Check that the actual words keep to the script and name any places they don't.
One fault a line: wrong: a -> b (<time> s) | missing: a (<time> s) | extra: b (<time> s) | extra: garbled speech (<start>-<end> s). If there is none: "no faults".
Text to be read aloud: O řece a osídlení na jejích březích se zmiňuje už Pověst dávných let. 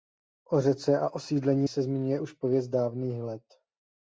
missing: na jejích březích (1.7 s)